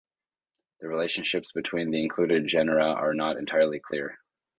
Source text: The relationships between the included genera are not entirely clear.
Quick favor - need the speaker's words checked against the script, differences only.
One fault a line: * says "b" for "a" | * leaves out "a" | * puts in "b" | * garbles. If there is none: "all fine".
all fine